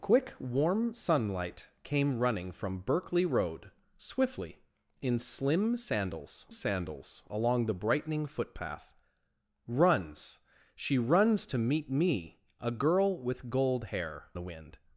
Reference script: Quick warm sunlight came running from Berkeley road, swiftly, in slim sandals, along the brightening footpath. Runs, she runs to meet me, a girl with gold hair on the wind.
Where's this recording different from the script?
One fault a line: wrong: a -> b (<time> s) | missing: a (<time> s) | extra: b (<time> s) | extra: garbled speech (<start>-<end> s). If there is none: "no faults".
extra: sandals (6.5 s)
missing: on (14.3 s)